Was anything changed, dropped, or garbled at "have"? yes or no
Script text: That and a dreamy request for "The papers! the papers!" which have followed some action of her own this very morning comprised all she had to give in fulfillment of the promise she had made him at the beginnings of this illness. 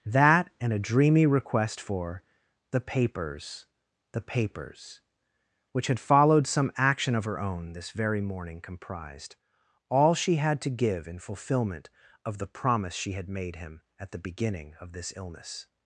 yes